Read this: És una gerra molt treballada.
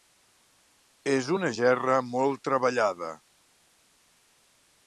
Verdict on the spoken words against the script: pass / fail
pass